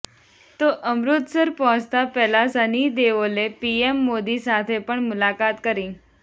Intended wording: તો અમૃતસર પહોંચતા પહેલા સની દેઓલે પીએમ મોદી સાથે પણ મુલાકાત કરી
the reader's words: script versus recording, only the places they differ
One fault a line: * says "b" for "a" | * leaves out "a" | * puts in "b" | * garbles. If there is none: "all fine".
all fine